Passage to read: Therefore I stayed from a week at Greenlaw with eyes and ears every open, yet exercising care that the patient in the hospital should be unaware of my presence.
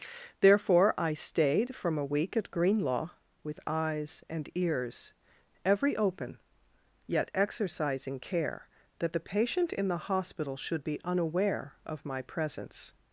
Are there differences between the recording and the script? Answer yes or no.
no